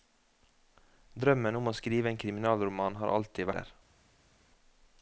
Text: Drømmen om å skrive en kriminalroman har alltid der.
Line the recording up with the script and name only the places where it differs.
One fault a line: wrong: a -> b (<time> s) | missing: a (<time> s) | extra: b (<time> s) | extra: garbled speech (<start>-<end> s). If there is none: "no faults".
no faults